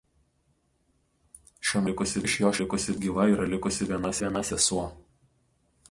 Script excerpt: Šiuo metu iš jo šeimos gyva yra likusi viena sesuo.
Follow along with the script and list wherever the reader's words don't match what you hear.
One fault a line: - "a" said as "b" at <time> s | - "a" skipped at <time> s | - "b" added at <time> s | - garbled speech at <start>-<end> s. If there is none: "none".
- "metu" said as "likusi" at 1.9 s
- "šeimos" said as "likusi" at 2.6 s
- "viena" added at 4.2 s